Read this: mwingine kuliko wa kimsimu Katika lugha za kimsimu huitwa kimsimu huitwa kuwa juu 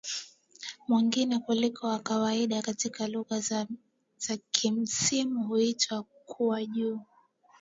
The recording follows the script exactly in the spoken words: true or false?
false